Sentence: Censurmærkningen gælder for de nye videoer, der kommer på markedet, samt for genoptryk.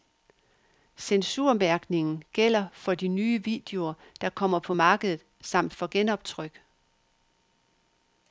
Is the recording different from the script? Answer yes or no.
no